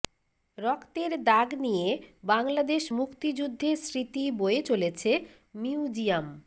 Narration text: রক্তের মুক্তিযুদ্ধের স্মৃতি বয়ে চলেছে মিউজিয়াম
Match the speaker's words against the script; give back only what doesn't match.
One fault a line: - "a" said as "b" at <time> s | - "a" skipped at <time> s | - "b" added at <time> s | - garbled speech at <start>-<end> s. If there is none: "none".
- "দাগ নিয়ে বাংলাদেশ" added at 1.2 s